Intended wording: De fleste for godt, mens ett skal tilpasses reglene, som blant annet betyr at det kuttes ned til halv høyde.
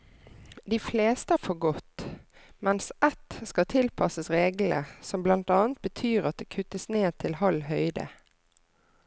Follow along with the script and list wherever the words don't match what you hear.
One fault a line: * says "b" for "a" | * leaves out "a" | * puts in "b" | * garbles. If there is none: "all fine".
all fine